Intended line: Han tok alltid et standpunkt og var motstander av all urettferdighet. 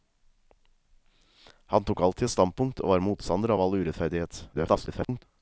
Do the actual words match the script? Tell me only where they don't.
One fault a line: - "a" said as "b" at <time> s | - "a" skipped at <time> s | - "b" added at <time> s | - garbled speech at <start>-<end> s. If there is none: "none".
- garbled speech at 4.5-5.2 s